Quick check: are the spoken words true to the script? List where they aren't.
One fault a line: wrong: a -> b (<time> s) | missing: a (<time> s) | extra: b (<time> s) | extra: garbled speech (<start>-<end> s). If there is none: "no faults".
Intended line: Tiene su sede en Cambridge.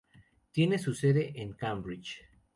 no faults